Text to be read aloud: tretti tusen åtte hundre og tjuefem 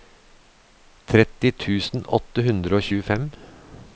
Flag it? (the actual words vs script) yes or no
no